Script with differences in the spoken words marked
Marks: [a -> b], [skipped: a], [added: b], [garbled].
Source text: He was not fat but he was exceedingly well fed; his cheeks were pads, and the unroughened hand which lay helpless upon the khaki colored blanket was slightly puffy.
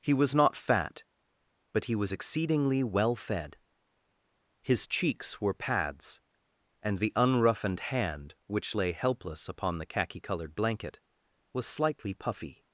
He was not fat but he was exceedingly well fed; his cheeks were pads, and the unroughened hand which lay helpless upon the khaki colored blanket was slightly puffy.